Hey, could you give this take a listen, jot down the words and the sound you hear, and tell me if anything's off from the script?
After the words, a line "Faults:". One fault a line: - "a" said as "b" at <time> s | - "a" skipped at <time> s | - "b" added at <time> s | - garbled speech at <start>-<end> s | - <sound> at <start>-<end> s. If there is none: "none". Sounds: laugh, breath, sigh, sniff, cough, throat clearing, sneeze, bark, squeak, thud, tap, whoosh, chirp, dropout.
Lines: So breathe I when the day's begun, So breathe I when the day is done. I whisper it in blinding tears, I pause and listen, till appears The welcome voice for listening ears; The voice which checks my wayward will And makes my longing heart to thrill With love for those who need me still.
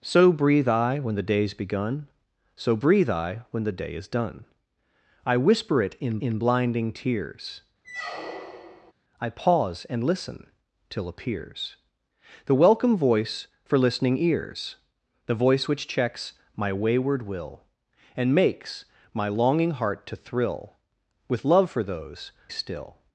So breathe I when the day's begun, So breathe I when the day is done. I whisper it in in blinding tears, I pause and listen, till appears The welcome voice for listening ears; The voice which checks my wayward will And makes my longing heart to thrill With love for those still.
Faults:
- "in" added at 6.2 s
- squeak at 7.8-8.9 s
- "who need me" skipped at 22.3 s